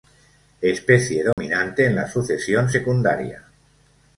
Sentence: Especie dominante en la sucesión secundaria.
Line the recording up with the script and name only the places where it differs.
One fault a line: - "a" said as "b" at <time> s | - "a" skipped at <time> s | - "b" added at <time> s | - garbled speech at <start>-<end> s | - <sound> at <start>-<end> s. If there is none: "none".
- dropout at 1.3-1.4 s